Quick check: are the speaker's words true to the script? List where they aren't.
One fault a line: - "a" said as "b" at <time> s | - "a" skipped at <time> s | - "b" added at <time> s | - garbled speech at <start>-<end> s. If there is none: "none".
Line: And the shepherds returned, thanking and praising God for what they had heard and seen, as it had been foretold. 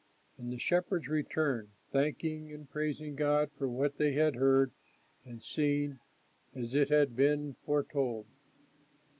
none